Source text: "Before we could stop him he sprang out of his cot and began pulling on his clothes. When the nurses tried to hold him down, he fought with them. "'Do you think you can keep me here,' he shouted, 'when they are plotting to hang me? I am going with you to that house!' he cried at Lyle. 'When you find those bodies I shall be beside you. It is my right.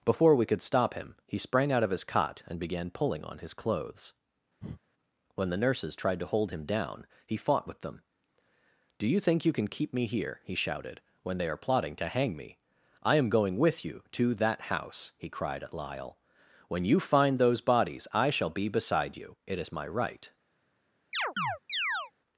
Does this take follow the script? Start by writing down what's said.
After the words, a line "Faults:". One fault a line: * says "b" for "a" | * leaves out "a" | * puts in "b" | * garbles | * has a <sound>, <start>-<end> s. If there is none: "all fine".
"Before we could stop him he sprang out of his cot and began pulling on his clothes. When the nurses tried to hold him down, he fought with them. "'Do you think you can keep me here,' he shouted, 'when they are plotting to hang me? I am going with you to that house!' he cried at Lyle. 'When you find those bodies I shall be beside you. It is my right.
Faults:
* has a breath, 4.6-4.8 s
* has a chirp, 21.1-22.1 s